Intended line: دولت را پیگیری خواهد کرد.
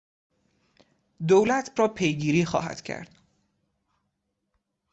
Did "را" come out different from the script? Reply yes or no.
no